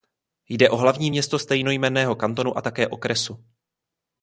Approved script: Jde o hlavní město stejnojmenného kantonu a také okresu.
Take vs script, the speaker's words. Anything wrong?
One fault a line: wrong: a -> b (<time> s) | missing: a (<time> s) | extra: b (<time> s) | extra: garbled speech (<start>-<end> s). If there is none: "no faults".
no faults